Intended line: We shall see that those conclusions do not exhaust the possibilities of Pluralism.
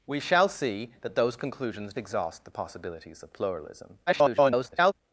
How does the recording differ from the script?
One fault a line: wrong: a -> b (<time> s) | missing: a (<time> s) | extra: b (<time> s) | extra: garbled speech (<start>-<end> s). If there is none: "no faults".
missing: do not (1.9 s)
extra: garbled speech (4.1-4.9 s)